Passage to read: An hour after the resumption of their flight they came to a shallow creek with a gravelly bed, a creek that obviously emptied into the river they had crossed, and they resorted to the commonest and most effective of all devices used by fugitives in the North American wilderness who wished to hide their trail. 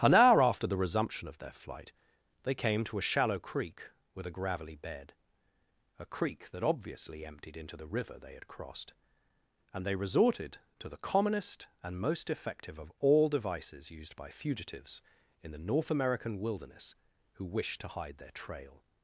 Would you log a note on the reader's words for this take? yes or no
no